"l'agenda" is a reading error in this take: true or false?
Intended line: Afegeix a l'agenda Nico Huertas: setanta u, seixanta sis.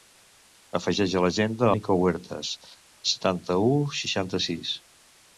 false